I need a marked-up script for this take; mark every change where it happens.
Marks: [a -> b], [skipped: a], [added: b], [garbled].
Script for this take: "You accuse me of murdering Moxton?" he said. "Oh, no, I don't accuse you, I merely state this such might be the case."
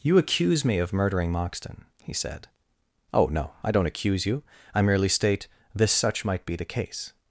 "You accuse me of murdering Moxton?" he said. "Oh, no, I don't accuse you, I merely state this such might be the case."